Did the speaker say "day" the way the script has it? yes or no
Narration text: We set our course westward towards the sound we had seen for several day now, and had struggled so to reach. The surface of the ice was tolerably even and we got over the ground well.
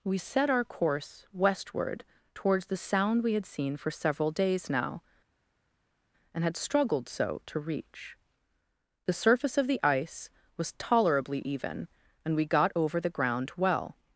no